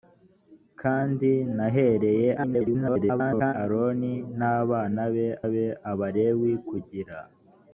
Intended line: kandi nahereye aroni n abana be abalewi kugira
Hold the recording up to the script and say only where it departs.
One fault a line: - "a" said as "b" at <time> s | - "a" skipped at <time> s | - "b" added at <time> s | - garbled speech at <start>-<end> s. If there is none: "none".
- garbled speech at 2.4-3.5 s
- "be" added at 5.5 s